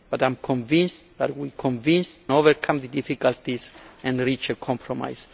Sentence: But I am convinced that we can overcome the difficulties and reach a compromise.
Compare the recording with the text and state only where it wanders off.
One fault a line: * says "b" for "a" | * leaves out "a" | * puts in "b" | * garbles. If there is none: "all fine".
* says "convinced" for "can"